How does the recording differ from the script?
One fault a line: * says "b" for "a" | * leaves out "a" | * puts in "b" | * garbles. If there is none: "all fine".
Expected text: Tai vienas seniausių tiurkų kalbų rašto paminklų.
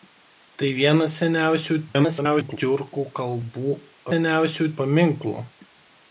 * garbles
* says "seniausių" for "rašto"